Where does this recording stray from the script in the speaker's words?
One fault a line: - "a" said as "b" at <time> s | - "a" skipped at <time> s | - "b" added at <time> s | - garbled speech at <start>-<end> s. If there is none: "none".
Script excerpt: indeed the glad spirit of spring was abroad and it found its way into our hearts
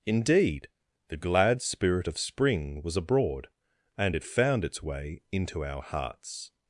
none